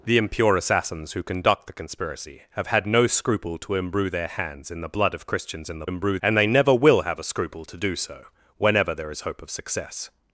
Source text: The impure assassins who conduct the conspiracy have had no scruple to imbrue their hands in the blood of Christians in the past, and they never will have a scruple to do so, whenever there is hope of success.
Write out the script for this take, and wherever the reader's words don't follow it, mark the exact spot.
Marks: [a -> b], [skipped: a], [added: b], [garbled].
The impure assassins who conduct the conspiracy have had no scruple to imbrue their hands in the blood of Christians in the [past, -> imbrue] and they never will have a scruple to do so, whenever there is hope of success.